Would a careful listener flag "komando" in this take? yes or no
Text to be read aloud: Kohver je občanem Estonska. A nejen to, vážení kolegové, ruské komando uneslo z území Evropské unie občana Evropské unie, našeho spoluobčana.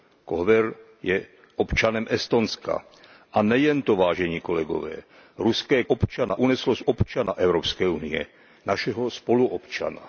yes